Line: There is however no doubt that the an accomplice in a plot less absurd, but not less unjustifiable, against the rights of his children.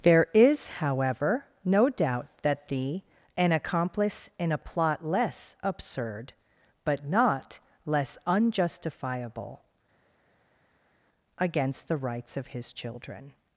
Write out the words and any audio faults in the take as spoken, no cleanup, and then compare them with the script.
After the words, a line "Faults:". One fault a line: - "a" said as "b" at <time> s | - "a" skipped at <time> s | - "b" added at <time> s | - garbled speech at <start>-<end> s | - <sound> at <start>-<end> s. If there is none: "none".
There is however no doubt that the an accomplice in a plot less absurd, but not less unjustifiable, against the rights of his children.
Faults:
none